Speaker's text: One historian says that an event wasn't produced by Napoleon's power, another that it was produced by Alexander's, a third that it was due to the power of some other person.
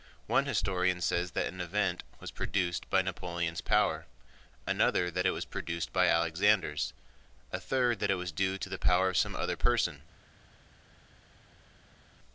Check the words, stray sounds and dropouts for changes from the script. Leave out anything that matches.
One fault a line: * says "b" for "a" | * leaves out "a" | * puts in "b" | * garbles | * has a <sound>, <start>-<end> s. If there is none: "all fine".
* says "was" for "wasn't"